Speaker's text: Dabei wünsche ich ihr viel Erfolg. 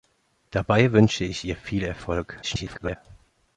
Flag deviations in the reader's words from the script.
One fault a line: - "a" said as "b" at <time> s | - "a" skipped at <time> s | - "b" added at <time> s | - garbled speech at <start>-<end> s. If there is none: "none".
- garbled speech at 2.4-3.0 s